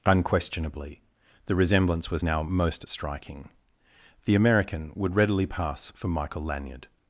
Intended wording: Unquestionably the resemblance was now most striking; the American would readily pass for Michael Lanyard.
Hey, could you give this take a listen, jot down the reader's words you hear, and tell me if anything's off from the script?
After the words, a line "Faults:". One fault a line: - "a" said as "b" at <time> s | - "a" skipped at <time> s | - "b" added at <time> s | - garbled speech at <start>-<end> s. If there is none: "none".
Unquestionably the resemblance was now most striking; the American would readily pass for Michael Lanyard.
Faults:
none